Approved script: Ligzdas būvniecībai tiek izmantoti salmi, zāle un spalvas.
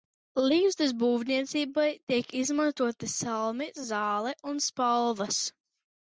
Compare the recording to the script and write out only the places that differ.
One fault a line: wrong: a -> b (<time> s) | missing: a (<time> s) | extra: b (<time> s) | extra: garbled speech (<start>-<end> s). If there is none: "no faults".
no faults